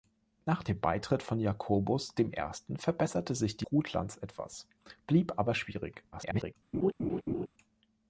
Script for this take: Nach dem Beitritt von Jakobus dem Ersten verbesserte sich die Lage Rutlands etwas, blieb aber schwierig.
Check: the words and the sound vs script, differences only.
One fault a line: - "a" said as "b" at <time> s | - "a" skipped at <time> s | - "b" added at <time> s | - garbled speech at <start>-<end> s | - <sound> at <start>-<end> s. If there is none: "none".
- "Lage" skipped at 3.6 s
- garbled speech at 6.1-6.5 s
- laugh at 6.7-7.5 s